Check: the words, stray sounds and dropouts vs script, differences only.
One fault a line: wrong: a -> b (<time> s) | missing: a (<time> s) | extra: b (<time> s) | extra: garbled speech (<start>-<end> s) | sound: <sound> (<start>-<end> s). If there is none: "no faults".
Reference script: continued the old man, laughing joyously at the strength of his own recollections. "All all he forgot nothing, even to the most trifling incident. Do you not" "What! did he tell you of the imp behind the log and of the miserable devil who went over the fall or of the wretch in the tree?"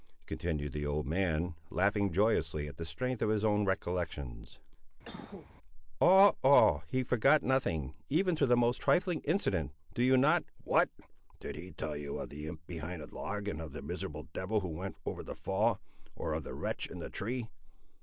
sound: cough (5.0-5.5 s)